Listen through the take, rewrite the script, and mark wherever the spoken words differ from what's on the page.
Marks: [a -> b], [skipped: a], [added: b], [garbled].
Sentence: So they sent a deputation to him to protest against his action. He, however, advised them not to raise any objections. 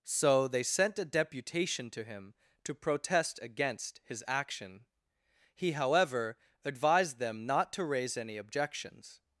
So they sent a deputation to him to protest against his action. He, however, advised them not to raise any objections.